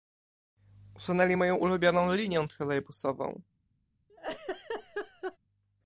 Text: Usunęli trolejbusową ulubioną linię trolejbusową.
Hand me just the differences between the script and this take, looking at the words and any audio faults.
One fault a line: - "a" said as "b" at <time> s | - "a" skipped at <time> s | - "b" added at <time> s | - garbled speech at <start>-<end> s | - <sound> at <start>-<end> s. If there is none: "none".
- "trolejbusową" said as "moją" at 1.4 s
- laugh at 4.1-5.4 s